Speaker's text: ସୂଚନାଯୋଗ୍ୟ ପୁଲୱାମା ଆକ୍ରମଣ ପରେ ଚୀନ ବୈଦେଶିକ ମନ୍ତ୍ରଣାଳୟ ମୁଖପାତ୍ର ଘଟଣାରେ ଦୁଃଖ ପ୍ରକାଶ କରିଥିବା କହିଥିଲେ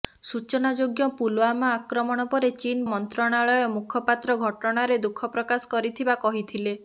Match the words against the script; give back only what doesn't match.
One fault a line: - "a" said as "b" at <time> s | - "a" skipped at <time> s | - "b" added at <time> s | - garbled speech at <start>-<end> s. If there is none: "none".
- "ବୈଦେଶିକ" skipped at 2.9 s